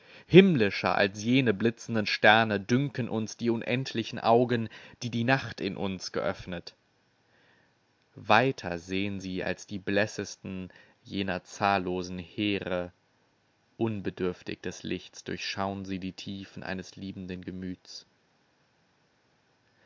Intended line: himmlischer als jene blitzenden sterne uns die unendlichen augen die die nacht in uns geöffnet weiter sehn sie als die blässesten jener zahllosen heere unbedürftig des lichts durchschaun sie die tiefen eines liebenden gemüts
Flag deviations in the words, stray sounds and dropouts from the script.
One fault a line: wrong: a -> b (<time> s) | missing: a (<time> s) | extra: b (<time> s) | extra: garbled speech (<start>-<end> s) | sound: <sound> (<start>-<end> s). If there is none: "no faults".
extra: dünken (2.6 s)